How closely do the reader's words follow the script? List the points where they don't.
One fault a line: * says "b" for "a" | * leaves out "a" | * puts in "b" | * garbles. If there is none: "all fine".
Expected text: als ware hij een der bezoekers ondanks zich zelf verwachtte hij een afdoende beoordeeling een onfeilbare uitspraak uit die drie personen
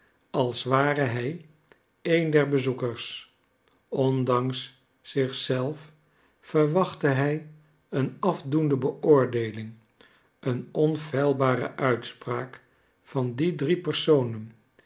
* says "van" for "uit"